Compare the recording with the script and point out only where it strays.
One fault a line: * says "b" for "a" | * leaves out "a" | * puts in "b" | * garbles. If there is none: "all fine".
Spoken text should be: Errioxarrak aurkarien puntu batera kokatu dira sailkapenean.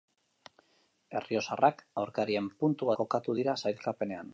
* leaves out "batera"